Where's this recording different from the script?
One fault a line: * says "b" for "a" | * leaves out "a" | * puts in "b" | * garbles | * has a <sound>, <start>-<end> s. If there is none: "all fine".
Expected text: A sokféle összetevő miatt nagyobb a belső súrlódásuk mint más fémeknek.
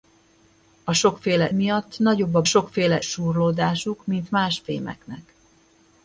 * leaves out "összetevő"
* says "sokféle" for "belső"